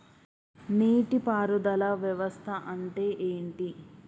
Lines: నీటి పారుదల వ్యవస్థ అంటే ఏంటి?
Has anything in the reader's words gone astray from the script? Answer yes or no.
no